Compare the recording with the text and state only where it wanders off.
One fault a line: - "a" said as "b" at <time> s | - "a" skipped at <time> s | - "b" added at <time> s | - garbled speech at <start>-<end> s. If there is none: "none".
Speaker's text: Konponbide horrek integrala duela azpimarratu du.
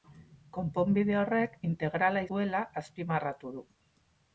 none